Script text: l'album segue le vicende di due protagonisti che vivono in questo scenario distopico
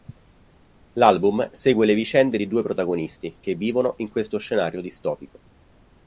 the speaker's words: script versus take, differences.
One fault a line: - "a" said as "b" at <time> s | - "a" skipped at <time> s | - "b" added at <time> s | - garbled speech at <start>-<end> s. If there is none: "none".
none